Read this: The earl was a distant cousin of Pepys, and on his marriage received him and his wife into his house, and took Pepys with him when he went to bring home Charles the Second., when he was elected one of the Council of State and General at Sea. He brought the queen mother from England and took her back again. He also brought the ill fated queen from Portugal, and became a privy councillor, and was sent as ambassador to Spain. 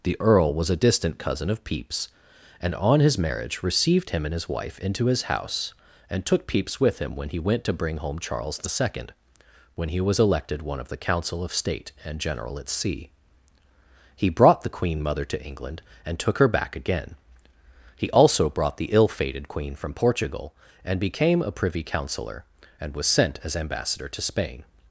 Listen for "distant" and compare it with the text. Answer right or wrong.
right